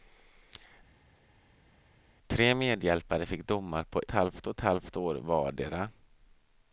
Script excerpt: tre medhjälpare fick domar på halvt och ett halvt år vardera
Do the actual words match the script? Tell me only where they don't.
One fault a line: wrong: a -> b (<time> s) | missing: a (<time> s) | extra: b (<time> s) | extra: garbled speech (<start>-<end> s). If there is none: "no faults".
no faults